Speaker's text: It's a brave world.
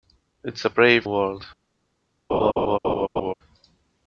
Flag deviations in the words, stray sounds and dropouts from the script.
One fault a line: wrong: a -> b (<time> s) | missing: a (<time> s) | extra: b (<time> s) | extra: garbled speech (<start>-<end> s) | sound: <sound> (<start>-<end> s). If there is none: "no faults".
sound: laugh (2.3-3.3 s)